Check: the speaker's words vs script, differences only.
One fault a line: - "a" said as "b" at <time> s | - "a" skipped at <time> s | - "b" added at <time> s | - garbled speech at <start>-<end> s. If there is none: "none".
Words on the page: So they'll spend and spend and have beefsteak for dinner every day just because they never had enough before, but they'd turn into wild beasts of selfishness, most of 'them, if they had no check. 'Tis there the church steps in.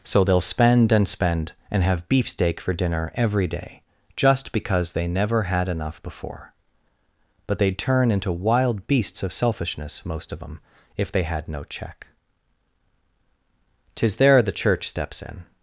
none